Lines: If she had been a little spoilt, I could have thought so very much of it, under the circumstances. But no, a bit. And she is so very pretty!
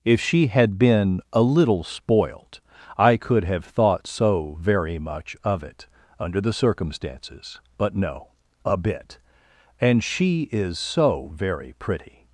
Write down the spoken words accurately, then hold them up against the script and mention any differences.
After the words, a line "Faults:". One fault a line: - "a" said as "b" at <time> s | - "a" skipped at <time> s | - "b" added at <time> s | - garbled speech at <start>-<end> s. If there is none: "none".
If she had been a little spoilt, I could have thought so very much of it, under the circumstances. But no, a bit. And she is so very pretty!
Faults:
none